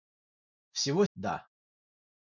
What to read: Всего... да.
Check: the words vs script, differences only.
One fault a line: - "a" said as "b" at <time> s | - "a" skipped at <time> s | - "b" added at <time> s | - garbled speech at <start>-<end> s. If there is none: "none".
none